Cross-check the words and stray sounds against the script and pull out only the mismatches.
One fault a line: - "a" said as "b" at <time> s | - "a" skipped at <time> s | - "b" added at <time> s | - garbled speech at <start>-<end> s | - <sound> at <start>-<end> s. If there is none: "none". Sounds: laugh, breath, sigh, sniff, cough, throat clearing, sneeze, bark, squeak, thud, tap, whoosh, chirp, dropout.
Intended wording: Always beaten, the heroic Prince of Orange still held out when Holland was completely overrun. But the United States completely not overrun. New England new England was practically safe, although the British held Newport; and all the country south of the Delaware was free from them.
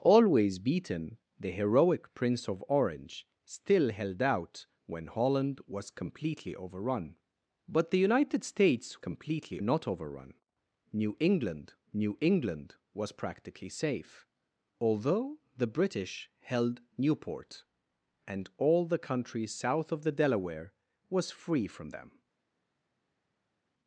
none